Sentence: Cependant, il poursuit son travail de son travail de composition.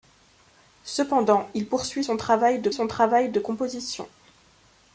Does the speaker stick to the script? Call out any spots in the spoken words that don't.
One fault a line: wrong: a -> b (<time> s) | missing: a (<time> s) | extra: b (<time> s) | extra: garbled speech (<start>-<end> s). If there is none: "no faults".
no faults